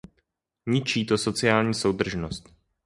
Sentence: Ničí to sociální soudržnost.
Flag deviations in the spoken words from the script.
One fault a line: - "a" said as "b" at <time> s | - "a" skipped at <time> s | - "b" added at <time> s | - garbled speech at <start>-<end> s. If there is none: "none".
none